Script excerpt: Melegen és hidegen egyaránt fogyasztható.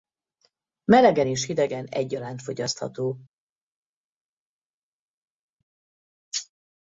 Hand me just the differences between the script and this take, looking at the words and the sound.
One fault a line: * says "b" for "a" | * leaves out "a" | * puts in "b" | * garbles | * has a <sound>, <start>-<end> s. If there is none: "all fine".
all fine